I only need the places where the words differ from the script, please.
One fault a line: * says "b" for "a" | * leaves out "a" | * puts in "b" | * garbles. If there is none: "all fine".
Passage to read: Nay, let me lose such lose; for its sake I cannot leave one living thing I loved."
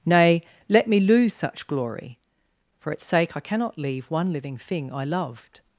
* says "glory" for "lose"